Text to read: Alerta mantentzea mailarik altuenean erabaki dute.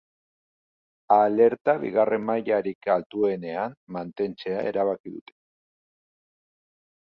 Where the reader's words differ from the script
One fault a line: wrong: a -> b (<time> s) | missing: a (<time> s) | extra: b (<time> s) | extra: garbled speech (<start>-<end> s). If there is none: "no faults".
wrong: mantentzea -> bigarren (1.8 s)
extra: mantentzea (4.0 s)